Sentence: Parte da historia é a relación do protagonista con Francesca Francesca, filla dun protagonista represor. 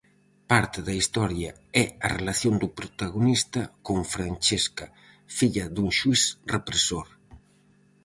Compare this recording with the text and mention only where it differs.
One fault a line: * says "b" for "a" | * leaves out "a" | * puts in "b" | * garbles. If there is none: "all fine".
* leaves out "Francesca"
* says "xuíz" for "protagonista"